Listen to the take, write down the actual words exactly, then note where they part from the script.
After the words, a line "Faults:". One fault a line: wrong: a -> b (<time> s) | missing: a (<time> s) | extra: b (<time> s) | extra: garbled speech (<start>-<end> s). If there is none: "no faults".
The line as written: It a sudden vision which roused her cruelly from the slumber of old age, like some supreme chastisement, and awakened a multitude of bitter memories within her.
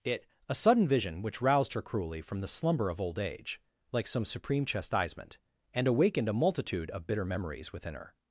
It a sudden vision which roused her cruelly from the slumber of old age, like some supreme chastisement, and awakened a multitude of bitter memories within her.
Faults:
no faults